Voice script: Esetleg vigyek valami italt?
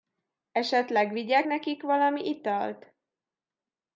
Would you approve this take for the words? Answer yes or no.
no